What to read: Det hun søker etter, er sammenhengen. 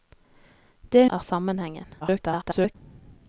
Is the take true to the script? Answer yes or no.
no